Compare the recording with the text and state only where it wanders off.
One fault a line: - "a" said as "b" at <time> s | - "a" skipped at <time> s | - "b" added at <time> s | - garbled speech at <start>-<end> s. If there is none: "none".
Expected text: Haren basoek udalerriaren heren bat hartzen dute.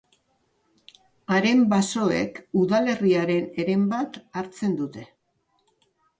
none